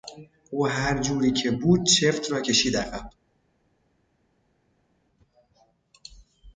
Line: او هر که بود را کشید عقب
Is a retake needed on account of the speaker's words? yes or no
yes